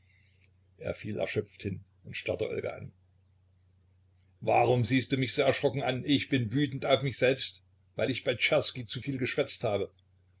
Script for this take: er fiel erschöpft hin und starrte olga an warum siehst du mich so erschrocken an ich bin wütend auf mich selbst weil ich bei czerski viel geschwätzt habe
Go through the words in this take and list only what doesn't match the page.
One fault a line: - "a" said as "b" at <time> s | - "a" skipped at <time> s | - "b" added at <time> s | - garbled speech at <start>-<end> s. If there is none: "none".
- "zu" added at 8.9 s